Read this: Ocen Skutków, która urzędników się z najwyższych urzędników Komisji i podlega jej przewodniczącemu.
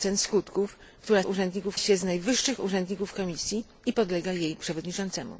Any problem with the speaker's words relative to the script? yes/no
no